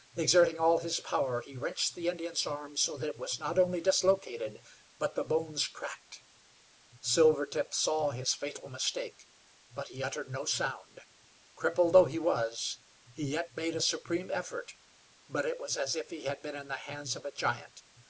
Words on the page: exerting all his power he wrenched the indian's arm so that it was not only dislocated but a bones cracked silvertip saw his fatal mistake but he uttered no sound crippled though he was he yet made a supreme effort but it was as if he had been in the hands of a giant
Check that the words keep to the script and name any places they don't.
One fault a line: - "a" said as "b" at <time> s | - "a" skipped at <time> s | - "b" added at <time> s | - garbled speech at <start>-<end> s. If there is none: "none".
- "a" said as "the" at 5.1 s